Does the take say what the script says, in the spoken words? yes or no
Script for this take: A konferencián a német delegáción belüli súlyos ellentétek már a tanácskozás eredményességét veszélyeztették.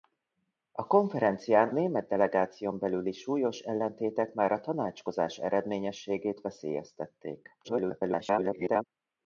no